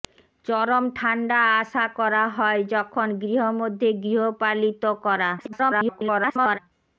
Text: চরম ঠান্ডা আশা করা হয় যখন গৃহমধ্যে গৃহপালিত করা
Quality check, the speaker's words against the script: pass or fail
fail